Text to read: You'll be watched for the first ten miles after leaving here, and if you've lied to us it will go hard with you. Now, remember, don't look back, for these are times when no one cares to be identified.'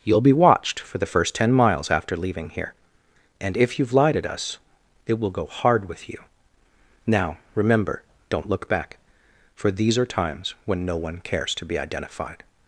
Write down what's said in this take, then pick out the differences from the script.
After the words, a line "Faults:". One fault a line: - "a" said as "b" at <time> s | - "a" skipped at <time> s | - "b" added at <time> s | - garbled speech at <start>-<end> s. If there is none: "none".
You'll be watched for the first ten miles after leaving here, and if you've lied at us it will go hard with you. Now, remember, don't look back, for these are times when no one cares to be identified.'
Faults:
- "to" said as "at" at 4.2 s